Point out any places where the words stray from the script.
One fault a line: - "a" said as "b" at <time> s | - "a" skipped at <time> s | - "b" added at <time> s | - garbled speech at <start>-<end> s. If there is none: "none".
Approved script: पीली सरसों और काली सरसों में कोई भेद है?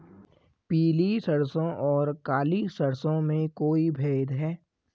none